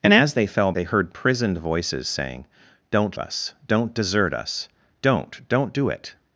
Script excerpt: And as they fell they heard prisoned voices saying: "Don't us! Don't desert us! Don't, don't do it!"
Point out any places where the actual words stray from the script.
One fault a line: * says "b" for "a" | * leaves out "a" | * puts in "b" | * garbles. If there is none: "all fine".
all fine